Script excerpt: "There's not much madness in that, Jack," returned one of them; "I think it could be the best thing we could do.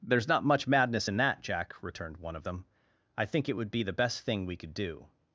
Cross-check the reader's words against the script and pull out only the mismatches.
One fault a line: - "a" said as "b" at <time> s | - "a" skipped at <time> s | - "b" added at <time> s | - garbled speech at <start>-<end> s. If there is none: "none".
- "could" said as "would" at 3.6 s